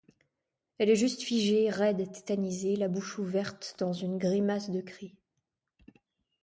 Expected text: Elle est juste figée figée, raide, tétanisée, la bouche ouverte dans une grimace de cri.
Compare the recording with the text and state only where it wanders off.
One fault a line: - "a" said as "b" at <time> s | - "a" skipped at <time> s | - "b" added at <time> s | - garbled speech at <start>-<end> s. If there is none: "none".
- "figée" skipped at 1.7 s